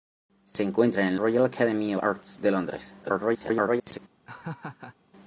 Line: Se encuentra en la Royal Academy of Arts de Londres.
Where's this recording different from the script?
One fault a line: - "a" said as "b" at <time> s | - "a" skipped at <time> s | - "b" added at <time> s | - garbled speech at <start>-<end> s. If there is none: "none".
- "la" skipped at 1.1 s
- "of" skipped at 1.9 s
- garbled speech at 3.0-4.0 s